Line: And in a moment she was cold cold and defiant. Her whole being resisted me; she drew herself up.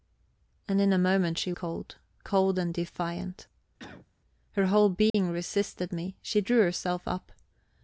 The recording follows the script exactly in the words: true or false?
false